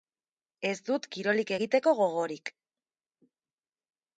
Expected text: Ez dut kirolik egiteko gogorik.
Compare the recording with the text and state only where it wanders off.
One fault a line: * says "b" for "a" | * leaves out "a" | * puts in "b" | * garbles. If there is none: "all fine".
all fine